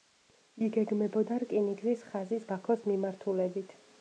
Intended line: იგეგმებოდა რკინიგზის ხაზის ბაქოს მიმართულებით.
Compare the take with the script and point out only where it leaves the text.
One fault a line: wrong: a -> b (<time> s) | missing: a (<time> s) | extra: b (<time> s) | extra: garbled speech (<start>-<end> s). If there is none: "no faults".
no faults